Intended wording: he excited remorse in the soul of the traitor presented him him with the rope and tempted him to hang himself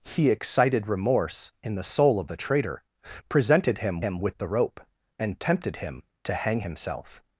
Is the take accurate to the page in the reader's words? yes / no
yes